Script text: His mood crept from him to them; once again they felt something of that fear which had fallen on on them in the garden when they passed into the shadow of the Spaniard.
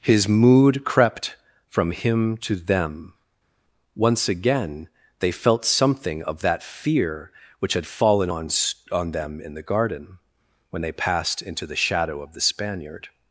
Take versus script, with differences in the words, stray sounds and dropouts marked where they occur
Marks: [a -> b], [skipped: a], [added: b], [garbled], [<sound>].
His mood crept from him to them; once again they felt something of that fear which had fallen on on them in the garden when they passed into the shadow of the Spaniard.